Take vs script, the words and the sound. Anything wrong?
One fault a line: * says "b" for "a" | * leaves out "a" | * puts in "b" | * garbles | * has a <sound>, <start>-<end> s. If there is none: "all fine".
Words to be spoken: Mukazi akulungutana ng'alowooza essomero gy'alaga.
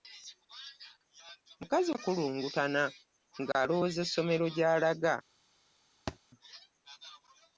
* has a thud, 6.1-6.2 s